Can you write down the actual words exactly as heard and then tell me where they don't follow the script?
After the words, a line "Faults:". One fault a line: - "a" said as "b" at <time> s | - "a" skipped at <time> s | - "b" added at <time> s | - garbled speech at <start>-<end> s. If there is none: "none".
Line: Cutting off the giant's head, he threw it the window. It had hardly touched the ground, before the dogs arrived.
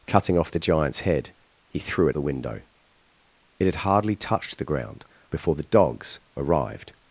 Cutting off the giant's head, he threw it the window. It had hardly touched the ground, before the dogs arrived.
Faults:
none